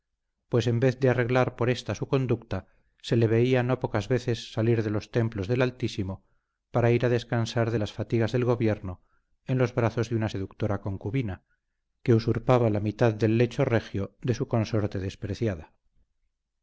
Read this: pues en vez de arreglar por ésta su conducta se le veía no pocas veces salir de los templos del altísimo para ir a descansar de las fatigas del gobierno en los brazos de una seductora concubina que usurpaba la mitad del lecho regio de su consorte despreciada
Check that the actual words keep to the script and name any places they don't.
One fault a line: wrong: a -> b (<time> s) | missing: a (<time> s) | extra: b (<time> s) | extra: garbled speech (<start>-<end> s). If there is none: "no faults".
no faults